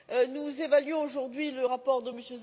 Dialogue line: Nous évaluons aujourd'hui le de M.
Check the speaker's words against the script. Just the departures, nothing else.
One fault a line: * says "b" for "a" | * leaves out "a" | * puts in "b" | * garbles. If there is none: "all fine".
* puts in "rapport"